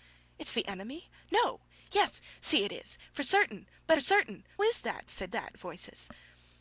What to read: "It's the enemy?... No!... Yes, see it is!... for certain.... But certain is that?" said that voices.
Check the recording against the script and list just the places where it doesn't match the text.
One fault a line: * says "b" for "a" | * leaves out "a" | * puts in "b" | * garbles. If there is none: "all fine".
all fine